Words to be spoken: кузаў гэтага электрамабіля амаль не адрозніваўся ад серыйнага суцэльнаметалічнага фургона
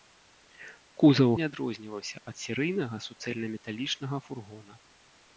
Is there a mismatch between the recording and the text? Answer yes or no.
yes